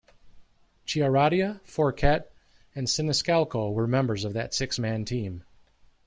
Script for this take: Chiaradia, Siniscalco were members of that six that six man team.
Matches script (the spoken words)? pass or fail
fail